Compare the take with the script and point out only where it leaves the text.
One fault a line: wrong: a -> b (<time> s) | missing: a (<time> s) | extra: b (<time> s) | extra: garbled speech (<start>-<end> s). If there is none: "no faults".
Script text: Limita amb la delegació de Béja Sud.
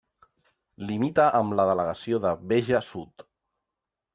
no faults